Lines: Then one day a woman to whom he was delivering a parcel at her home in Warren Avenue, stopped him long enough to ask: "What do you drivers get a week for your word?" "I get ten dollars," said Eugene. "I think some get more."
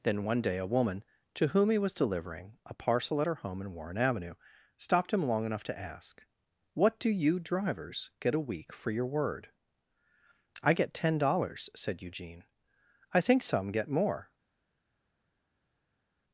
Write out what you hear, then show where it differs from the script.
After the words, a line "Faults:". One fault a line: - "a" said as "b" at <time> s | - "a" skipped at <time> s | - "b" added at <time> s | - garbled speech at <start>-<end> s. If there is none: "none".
Then one day a woman to whom he was delivering a parcel at her home in Warren Avenue, stopped him long enough to ask: "What do you drivers get a week for your word?" "I get ten dollars," said Eugene. "I think some get more."
Faults:
none